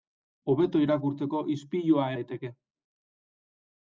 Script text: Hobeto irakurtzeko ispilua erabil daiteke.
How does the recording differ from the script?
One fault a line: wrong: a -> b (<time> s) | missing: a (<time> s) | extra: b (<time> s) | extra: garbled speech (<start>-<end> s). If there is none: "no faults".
missing: erabil (2.1 s)